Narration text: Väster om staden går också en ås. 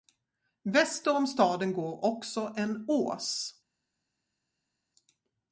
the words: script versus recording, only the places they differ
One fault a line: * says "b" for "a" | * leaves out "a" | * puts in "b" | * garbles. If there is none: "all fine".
all fine